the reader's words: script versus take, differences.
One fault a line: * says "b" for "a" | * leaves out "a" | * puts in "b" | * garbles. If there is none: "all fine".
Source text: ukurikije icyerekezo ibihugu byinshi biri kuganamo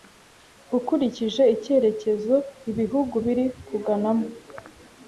* leaves out "byinshi"